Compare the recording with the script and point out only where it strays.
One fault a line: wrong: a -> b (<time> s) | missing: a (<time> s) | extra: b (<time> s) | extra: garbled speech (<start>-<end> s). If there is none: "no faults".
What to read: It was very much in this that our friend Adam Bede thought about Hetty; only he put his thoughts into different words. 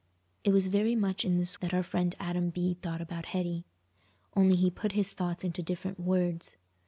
no faults